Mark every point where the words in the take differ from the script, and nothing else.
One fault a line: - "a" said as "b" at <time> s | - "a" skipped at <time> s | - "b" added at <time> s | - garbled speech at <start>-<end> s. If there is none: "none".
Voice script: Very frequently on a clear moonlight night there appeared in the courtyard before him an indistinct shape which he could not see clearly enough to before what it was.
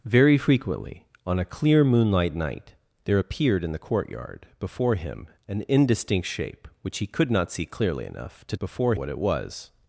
none